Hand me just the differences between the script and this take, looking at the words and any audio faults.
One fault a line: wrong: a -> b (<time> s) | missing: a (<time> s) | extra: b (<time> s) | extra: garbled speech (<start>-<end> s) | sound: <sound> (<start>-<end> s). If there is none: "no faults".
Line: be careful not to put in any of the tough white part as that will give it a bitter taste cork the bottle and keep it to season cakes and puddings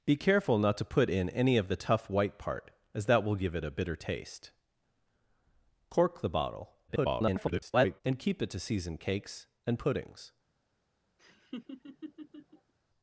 extra: garbled speech (6.9-8.0 s)
sound: laugh (11.2-12.7 s)